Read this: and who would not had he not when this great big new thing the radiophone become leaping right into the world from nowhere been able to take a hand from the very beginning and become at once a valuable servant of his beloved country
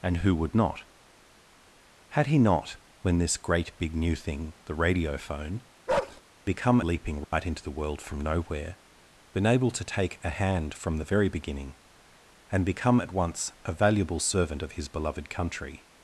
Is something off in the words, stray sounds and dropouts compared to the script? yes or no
yes